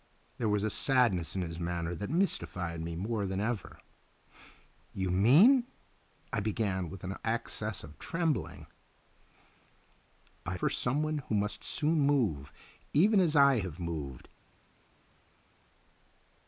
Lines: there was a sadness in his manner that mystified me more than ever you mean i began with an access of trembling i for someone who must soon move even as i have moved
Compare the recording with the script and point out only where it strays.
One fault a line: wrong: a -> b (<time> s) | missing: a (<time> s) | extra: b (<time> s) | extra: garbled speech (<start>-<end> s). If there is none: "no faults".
no faults